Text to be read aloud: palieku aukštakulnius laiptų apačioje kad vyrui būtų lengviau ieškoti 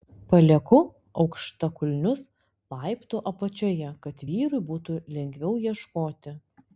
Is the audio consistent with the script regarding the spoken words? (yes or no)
yes